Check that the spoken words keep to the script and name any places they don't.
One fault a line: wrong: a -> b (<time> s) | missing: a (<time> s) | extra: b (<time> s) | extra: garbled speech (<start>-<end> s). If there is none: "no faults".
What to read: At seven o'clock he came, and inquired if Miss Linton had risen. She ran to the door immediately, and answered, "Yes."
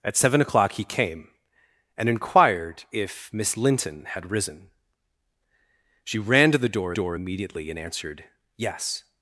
extra: door (6.9 s)